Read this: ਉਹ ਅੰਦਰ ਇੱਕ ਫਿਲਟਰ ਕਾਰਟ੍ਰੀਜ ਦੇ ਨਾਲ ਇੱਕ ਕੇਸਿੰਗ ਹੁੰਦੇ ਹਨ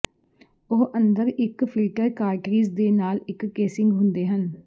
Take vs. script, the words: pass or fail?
pass